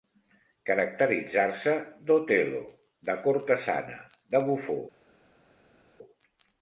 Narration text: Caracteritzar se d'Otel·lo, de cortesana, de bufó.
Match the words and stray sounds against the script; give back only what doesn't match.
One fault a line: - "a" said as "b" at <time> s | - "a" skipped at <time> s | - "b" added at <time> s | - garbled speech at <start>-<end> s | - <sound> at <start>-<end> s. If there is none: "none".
none